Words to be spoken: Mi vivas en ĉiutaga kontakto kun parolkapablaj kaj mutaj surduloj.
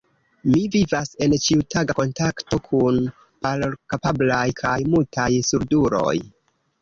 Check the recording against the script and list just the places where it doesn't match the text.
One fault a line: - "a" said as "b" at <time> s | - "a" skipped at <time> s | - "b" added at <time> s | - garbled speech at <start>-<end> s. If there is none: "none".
none